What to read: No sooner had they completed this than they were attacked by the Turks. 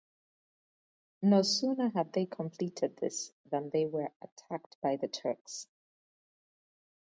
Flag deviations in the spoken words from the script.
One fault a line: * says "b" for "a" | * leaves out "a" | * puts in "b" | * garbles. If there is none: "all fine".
all fine